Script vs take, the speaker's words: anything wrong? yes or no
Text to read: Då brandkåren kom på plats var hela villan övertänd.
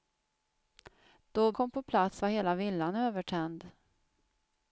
yes